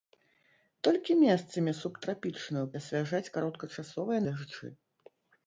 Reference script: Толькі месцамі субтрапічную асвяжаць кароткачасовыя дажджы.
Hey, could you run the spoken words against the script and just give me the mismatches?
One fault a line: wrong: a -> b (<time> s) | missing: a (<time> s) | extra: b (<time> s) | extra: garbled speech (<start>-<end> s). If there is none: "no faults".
no faults